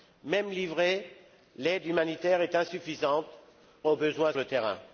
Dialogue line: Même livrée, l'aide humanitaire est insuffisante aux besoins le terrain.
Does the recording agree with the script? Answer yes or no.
yes